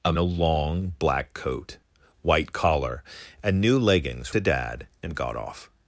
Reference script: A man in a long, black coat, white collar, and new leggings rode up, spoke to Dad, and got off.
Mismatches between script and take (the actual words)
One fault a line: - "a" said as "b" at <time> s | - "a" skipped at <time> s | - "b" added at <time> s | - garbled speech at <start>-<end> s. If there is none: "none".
- "man in" skipped at 0.1 s
- "rode up spoke" skipped at 4.3 s